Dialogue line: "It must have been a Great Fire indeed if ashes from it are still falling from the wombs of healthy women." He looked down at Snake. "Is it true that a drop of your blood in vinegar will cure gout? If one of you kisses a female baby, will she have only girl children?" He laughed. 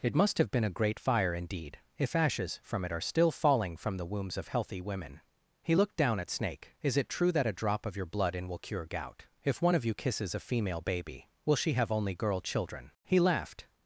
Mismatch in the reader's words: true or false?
true